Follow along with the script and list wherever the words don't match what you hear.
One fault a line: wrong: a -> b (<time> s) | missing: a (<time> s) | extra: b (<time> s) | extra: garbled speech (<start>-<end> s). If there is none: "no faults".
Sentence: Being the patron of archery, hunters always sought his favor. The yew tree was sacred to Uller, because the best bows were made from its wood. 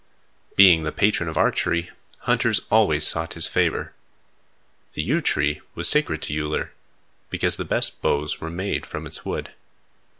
no faults